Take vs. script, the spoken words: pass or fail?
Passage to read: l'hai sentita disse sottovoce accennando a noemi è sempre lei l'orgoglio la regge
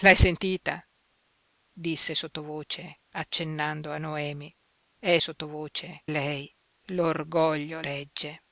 fail